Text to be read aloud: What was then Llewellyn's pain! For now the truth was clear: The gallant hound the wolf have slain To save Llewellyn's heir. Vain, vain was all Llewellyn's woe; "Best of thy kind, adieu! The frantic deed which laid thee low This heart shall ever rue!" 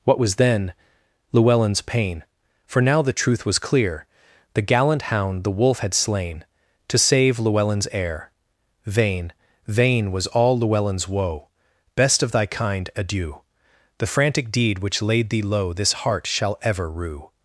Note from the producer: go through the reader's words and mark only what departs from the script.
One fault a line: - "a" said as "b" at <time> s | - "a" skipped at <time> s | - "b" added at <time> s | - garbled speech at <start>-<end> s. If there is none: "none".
- "have" said as "had" at 5.8 s